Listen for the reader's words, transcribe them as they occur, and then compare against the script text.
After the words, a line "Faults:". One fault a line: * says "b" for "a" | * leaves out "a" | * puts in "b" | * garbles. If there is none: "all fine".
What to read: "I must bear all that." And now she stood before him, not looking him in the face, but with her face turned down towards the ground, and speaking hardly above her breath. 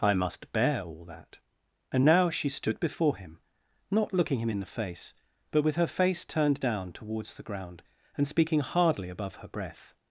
"I must bear all that." And now she stood before him, not looking him in the face, but with her face turned down towards the ground, and speaking hardly above her breath.
Faults:
all fine